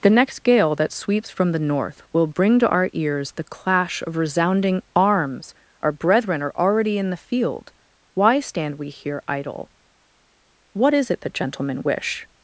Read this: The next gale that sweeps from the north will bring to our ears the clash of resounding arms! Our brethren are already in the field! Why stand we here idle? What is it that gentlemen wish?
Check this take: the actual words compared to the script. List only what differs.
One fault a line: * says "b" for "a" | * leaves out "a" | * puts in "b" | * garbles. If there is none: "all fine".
all fine